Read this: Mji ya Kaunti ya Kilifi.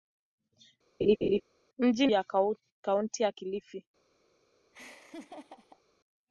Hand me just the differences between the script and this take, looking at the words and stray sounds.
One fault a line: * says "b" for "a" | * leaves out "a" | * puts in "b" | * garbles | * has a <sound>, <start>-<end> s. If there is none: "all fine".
* has a laugh, 1.0-1.4 s
* has a laugh, 4.7-5.8 s